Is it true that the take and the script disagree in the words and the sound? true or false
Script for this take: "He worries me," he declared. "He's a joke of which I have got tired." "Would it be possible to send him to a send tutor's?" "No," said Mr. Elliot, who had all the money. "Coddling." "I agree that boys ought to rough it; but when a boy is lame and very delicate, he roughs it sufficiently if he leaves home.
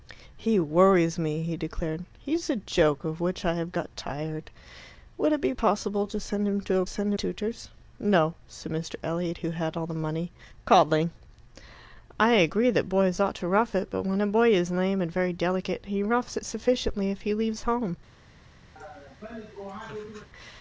true